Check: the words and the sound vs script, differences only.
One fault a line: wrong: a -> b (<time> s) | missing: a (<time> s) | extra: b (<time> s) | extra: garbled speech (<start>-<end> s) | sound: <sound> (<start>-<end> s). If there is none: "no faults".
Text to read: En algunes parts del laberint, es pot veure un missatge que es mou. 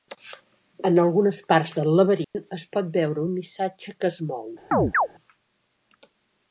sound: dropout (2.2-2.3 s)
sound: chirp (4.7-5.1 s)